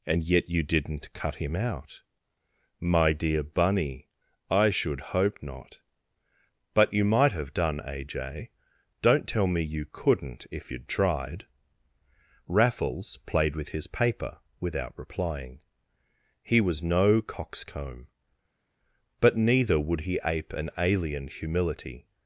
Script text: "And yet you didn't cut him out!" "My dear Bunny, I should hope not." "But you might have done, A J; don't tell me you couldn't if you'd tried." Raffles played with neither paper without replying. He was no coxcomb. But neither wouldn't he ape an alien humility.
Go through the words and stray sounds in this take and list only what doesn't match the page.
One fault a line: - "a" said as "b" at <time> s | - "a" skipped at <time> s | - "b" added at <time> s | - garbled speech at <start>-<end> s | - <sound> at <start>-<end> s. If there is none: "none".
- "neither" said as "his" at 13.7 s
- "wouldn't" said as "would" at 19.8 s